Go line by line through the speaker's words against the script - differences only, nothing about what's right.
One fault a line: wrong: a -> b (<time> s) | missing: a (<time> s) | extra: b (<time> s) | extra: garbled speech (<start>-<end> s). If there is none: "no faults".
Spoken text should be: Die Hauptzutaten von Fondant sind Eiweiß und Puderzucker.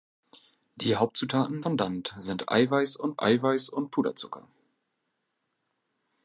missing: von (1.6 s)
extra: Eiweiß und (3.2 s)